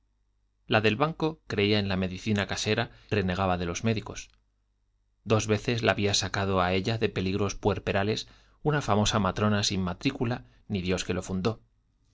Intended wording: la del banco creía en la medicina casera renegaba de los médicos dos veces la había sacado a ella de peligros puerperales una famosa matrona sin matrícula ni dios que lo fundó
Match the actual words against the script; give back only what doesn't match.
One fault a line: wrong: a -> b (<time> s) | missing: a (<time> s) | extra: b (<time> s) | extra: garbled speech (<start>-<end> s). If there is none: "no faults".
no faults